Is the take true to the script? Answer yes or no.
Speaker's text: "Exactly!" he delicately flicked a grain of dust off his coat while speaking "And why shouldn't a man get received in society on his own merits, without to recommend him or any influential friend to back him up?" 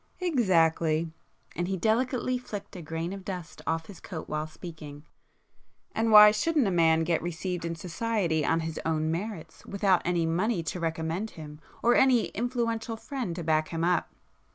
no